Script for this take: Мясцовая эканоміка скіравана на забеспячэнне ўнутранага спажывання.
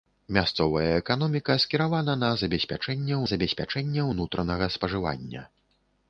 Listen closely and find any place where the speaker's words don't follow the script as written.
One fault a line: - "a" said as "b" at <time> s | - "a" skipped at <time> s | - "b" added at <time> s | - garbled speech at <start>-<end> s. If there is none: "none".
- "забеспячэнне" added at 3.3 s